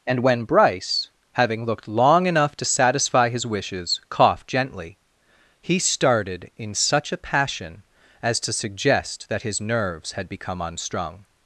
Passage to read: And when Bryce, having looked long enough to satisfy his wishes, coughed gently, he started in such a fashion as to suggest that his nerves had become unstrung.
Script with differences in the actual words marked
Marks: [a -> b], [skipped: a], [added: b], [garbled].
And when Bryce, having looked long enough to satisfy his wishes, coughed gently, he started in such a [fashion -> passion] as to suggest that his nerves had become unstrung.